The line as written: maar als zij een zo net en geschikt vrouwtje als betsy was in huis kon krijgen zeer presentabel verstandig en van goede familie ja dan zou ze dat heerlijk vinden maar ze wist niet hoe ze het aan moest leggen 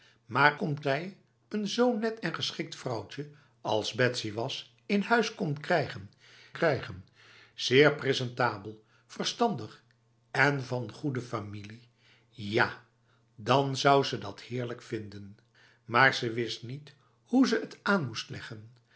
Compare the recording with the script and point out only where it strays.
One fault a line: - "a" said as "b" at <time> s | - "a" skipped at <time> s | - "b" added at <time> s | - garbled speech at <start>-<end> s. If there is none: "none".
- "als" said as "kon" at 0.5 s
- "krijgen" added at 6.5 s